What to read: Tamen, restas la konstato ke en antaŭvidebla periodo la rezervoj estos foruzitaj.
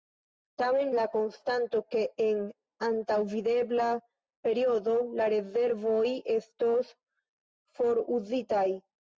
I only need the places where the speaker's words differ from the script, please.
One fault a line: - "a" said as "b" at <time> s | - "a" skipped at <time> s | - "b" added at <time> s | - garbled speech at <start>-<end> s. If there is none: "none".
- "restas" skipped at 0.9 s